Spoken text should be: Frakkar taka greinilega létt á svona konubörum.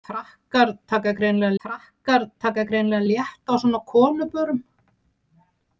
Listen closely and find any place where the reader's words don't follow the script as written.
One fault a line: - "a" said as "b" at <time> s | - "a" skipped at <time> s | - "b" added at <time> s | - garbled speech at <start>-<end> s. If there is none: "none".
- "frakkar taka greinilega" added at 1.6 s